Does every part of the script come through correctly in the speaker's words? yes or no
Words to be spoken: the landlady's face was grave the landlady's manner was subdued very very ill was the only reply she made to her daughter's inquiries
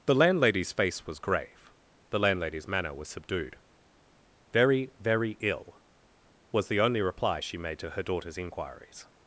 yes